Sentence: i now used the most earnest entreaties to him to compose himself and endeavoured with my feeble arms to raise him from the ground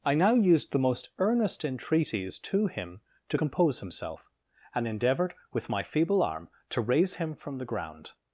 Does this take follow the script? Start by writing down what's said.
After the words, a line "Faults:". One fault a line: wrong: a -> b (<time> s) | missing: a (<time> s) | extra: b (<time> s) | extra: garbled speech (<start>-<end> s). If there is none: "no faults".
i now used the most earnest entreaties to him to compose himself and endeavoured with my feeble arm to raise him from the ground
Faults:
wrong: arms -> arm (6.2 s)